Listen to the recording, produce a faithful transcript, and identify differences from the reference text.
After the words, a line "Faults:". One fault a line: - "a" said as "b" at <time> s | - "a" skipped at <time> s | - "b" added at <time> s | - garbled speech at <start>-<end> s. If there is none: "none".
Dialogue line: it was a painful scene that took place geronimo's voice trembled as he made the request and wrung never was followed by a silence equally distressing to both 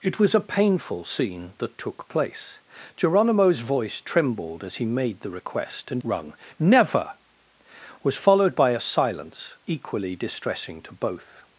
it was a painful scene that took place geronimo's voice trembled as he made the request and wrung never was followed by a silence equally distressing to both
Faults:
none